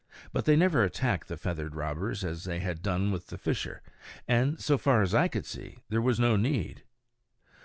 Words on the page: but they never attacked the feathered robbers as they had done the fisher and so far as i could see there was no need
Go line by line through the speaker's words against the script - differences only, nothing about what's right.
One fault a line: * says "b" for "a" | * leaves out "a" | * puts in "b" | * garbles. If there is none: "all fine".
* puts in "with"